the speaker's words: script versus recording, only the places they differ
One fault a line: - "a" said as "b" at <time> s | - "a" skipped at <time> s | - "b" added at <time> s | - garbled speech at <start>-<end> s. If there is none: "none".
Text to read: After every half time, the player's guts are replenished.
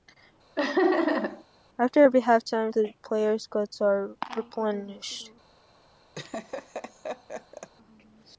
none